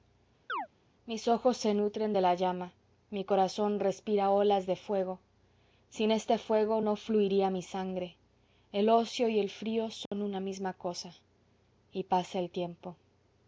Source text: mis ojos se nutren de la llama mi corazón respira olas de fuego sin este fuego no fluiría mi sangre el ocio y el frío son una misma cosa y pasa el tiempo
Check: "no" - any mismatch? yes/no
no